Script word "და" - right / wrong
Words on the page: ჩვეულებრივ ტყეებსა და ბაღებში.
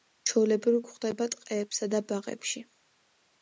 right